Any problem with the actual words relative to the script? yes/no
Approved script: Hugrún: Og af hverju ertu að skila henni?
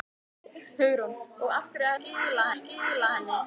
yes